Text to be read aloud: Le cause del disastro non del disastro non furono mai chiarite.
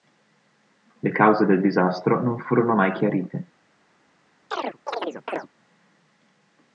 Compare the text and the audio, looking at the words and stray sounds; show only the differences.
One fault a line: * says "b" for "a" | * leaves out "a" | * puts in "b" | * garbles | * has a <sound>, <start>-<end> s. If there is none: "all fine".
* leaves out "del disastro non"
* has a chirp, 4.5-5.5 s